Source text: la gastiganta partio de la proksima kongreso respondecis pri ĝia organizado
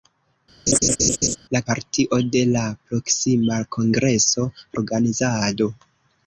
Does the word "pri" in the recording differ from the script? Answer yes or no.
yes